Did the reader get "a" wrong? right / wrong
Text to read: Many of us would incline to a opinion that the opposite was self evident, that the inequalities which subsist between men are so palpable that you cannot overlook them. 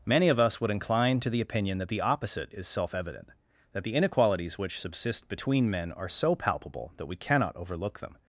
wrong